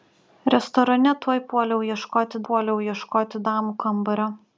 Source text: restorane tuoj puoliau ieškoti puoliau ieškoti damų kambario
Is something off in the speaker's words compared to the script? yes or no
no